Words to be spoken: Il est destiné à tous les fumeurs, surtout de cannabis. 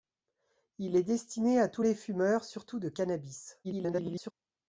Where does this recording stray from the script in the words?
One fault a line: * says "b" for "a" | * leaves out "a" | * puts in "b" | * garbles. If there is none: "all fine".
* garbles